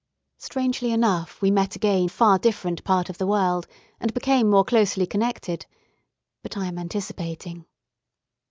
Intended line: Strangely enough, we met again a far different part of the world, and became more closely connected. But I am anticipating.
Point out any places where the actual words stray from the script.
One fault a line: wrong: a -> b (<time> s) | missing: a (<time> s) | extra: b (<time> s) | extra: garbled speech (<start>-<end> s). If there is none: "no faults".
no faults